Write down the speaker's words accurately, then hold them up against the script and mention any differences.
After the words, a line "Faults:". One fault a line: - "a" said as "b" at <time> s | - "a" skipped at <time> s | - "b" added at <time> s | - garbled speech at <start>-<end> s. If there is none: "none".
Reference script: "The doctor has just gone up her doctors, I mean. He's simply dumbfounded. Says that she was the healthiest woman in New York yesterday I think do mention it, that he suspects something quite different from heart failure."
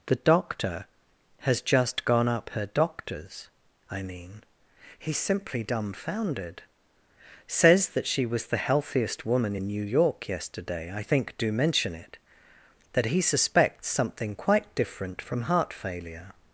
"The doctor has just gone up her doctors, I mean. He's simply dumbfounded. Says that she was the healthiest woman in New York yesterday I think do mention it, that he suspects something quite different from heart failure."
Faults:
none